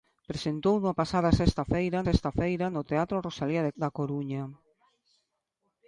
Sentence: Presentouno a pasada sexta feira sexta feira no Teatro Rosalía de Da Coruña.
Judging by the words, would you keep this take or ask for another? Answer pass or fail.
pass